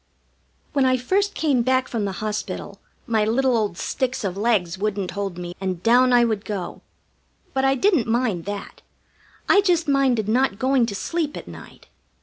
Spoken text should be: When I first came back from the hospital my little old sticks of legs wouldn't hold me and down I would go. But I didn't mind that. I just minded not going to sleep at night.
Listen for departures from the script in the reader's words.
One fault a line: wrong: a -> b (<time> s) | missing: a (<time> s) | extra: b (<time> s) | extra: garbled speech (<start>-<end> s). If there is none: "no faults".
no faults